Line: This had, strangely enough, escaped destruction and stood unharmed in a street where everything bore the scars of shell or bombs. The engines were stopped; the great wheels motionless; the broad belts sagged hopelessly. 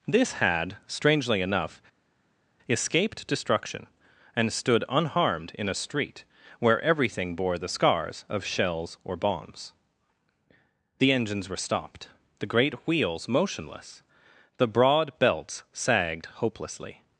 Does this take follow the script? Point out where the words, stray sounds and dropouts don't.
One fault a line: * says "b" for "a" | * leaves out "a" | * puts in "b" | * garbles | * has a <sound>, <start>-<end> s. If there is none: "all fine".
* says "shells" for "shell"